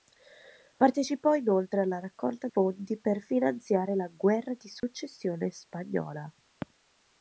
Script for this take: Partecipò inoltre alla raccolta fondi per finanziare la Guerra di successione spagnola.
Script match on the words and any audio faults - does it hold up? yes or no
no